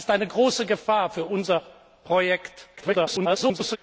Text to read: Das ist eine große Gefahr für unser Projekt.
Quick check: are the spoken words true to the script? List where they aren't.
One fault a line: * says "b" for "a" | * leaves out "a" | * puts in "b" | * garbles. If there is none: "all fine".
* garbles